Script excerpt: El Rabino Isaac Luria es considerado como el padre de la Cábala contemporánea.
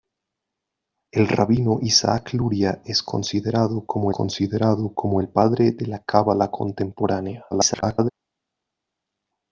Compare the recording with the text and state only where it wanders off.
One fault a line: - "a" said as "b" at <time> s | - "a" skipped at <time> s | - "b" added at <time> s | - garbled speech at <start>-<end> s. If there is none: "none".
- "considerado como" added at 4.1 s
- garbled speech at 7.5-8.1 s